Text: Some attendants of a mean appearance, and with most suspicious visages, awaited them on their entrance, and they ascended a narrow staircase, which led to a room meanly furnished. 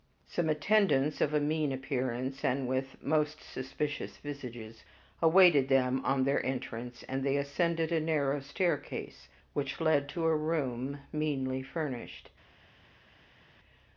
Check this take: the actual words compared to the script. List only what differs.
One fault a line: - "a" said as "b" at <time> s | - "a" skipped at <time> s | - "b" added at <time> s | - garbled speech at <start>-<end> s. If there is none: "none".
none